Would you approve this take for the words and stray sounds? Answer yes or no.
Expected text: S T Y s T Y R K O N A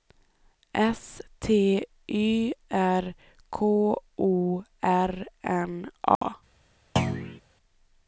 no